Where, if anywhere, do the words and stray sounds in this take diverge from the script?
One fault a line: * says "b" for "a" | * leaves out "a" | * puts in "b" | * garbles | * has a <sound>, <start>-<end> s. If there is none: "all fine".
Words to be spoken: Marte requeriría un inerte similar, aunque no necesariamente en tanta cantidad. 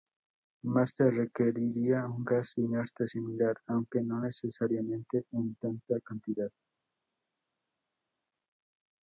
* puts in "gas"